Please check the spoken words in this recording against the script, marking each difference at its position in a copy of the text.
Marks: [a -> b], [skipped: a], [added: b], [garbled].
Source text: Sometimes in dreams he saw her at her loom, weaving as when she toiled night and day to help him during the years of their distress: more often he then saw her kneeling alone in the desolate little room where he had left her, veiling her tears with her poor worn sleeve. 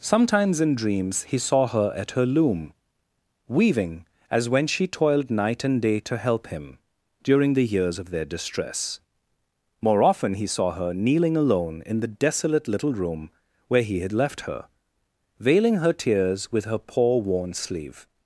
Sometimes in dreams he saw her at her loom, weaving as when she toiled night and day to help him during the years of their distress: more often he [skipped: then] saw her kneeling alone in the desolate little room where he had left her, veiling her tears with her poor worn sleeve.